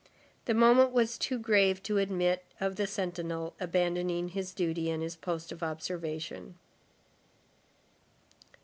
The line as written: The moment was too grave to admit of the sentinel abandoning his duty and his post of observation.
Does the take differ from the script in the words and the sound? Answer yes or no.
no